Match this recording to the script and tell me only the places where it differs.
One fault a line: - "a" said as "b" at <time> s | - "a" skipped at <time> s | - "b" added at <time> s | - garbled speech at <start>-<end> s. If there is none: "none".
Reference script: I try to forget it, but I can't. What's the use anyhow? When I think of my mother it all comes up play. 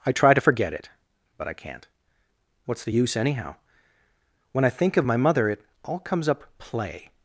none